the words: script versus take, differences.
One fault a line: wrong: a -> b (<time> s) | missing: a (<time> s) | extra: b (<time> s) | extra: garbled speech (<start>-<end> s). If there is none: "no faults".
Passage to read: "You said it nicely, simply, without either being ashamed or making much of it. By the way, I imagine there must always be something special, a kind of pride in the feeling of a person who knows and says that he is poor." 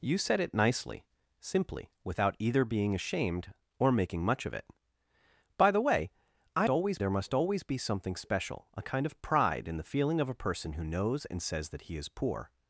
wrong: imagine -> always (6.7 s)